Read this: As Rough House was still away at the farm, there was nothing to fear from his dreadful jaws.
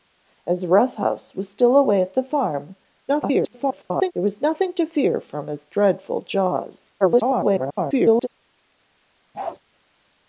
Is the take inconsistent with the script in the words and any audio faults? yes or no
yes